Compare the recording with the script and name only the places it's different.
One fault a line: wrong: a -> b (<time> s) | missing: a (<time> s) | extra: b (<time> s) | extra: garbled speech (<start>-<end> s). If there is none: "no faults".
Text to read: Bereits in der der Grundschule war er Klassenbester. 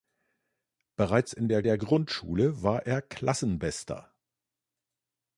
no faults